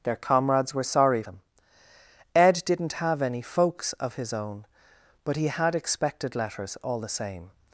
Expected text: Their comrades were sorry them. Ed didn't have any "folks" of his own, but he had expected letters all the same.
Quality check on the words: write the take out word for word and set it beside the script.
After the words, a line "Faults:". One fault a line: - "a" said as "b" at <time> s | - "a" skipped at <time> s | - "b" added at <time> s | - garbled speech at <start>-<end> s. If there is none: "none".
Their comrades were sorry them. Ed didn't have any "folks" of his own, but he had expected letters all the same.
Faults:
none